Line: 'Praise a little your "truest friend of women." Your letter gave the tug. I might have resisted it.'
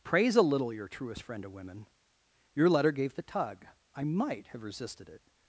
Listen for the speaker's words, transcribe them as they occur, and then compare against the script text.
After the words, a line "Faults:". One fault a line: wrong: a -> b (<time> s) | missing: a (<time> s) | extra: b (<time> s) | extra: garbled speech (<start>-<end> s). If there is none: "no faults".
'Praise a little your "truest friend of women." Your letter gave the tug. I might have resisted it.'
Faults:
no faults